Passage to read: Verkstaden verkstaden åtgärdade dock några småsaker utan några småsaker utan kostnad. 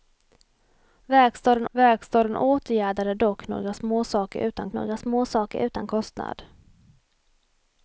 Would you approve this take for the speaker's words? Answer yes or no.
yes